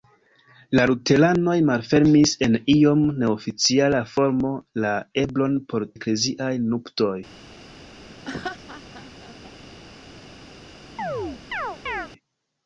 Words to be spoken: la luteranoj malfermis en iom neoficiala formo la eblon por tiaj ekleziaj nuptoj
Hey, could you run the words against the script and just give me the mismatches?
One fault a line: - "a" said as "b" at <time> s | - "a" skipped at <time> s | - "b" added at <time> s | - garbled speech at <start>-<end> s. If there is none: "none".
- "tiaj" skipped at 5.8 s